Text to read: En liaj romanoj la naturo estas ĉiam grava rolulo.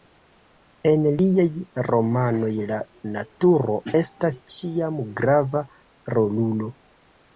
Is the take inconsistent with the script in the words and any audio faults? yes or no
no